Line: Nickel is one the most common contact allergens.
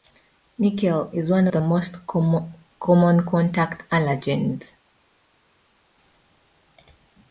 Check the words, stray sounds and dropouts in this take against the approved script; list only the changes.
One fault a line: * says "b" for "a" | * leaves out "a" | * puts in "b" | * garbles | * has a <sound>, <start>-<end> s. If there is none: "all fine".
all fine